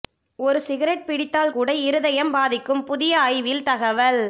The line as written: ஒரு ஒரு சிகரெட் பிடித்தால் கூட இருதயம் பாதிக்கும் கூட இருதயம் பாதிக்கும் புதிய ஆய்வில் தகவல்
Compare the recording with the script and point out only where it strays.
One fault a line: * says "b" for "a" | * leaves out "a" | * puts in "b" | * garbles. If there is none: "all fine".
* leaves out "ஒரு"
* leaves out "கூட இருதயம் பாதிக்கும்"